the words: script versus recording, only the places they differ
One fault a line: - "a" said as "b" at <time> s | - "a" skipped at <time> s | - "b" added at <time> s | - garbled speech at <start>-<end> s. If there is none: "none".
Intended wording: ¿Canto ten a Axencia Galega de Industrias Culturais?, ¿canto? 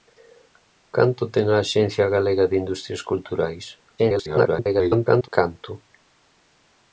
- garbled speech at 4.0-5.3 s